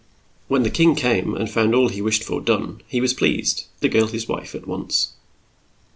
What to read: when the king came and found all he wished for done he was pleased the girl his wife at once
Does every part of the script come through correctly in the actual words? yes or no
yes